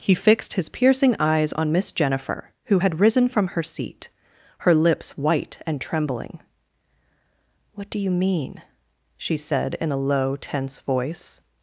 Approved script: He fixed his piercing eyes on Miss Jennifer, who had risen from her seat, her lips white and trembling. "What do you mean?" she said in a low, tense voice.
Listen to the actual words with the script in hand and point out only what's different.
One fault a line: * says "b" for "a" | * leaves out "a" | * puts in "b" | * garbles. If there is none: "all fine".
all fine